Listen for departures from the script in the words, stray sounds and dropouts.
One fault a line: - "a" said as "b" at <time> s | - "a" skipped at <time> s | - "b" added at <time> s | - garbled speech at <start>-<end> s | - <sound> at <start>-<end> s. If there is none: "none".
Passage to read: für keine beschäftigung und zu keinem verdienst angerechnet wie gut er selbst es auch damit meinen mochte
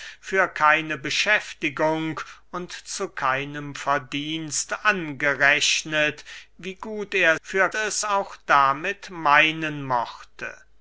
- "selbst" said as "für" at 7.4 s